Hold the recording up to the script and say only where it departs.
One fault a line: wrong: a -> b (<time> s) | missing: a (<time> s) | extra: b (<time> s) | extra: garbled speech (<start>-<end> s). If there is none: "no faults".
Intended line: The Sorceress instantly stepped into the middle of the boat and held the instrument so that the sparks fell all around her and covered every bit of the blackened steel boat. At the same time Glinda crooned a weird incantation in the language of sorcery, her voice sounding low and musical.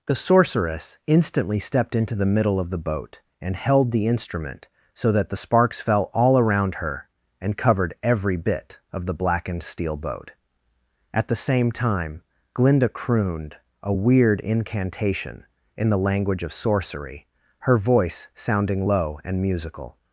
no faults